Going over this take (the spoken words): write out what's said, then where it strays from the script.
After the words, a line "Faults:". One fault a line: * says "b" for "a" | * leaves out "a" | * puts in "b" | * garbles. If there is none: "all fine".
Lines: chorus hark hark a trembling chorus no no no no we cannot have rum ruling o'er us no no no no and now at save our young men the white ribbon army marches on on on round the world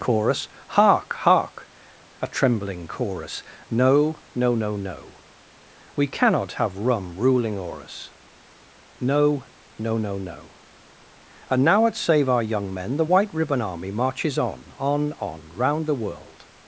chorus hark hark a trembling chorus no no no no we cannot have rum ruling o'er us no no no no and now at save our young men the white ribbon army marches on on on round the world
Faults:
all fine